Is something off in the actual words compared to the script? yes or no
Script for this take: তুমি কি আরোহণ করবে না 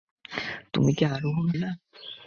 yes